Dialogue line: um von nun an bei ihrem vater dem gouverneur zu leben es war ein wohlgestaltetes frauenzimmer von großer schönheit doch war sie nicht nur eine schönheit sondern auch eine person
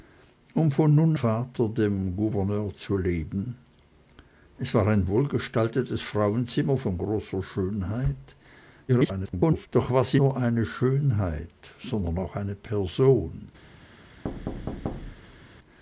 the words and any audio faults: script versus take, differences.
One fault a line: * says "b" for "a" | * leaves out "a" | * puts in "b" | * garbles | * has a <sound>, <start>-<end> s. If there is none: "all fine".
* leaves out "an bei ihrem"
* garbles
* leaves out "nicht"
* has a thud, 14.2-15.5 s